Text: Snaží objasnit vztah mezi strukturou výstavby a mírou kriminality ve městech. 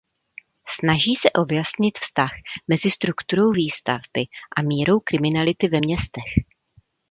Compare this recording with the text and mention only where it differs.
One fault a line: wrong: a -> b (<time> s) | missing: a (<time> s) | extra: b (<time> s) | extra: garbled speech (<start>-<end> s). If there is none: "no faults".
extra: se (1.1 s)